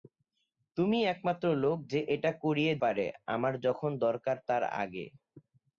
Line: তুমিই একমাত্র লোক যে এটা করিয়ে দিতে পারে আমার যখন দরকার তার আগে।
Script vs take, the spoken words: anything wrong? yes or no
yes